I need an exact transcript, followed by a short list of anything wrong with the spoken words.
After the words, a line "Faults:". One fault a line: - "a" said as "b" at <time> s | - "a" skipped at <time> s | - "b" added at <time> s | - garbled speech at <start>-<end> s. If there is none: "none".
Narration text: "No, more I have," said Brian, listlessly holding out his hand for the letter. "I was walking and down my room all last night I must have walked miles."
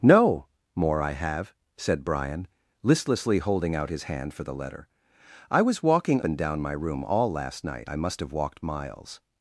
"No, more I have," said Brian, listlessly holding out his hand for the letter. "I was walking and down my room all last night I must have walked miles."
Faults:
none